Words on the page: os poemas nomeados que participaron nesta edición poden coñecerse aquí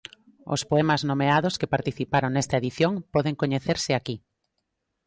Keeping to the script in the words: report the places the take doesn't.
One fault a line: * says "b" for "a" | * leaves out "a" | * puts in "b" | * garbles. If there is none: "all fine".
all fine